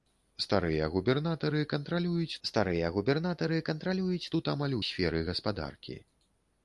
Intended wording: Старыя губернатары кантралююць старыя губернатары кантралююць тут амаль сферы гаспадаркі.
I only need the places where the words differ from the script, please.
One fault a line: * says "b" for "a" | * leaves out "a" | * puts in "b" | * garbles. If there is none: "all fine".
all fine